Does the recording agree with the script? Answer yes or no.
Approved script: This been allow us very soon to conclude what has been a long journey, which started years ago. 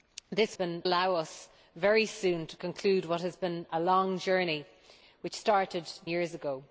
yes